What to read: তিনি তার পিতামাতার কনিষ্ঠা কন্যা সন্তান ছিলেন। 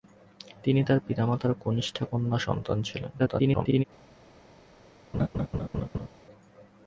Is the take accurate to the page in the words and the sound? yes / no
no